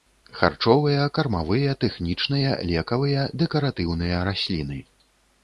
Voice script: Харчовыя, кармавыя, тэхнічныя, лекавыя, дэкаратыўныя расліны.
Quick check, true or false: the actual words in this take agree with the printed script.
true